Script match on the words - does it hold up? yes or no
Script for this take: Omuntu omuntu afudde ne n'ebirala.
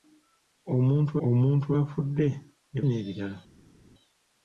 yes